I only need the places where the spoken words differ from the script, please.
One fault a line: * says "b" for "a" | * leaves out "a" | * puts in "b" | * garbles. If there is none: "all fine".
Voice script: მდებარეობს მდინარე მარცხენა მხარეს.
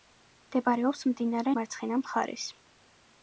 all fine